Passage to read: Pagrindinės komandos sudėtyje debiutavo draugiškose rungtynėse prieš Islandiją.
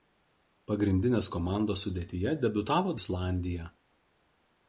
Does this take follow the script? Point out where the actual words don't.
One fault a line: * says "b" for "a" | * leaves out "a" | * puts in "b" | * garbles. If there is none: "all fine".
* leaves out "draugiškose rungtynėse prieš"